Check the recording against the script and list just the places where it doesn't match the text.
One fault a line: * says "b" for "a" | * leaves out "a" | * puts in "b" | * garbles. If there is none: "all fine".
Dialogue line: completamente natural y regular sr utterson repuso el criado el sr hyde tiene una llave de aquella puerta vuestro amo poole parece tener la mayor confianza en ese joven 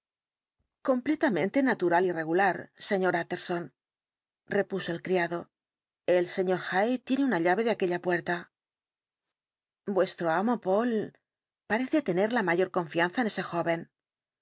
all fine